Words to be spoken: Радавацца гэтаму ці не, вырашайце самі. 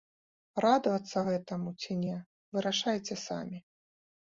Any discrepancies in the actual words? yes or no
no